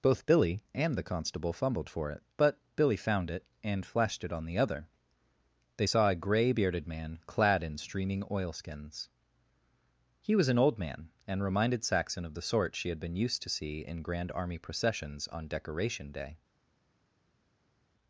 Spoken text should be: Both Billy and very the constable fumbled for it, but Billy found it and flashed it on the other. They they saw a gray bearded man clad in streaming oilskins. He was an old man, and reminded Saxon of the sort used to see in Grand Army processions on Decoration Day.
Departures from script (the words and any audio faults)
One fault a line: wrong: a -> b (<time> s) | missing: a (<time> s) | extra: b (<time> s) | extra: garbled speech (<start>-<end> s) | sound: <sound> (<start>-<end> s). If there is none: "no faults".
missing: very (0.9 s)
missing: they (5.9 s)
extra: she had been (12.8 s)